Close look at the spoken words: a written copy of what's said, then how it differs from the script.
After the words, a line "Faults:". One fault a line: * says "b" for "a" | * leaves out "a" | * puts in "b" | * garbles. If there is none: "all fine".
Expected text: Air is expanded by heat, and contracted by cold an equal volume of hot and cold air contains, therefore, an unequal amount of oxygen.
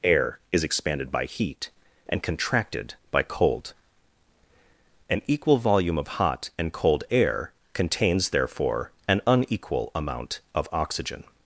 Air is expanded by heat, and contracted by cold an equal volume of hot and cold air contains, therefore, an unequal amount of oxygen.
Faults:
all fine